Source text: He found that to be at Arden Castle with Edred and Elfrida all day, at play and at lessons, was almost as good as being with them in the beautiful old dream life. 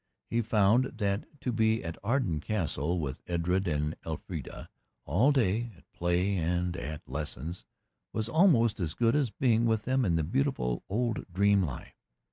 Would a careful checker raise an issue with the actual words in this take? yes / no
no